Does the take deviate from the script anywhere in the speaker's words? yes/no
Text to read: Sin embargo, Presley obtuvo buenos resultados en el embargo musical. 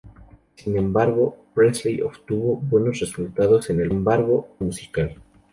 no